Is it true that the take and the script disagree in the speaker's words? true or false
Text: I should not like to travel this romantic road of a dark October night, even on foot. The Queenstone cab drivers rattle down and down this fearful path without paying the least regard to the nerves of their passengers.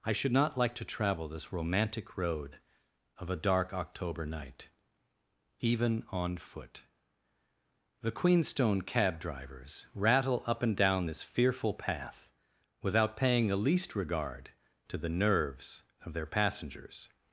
true